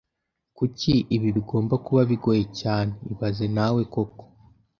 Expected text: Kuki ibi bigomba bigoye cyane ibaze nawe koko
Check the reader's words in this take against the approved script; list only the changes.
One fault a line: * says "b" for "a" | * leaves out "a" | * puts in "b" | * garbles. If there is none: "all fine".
* puts in "kuba"